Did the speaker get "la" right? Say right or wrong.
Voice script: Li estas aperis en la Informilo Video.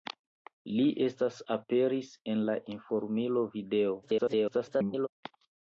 right